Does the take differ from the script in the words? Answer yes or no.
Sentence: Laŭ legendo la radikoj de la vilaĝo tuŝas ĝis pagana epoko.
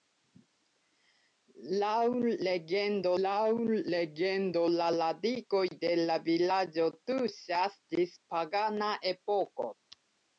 yes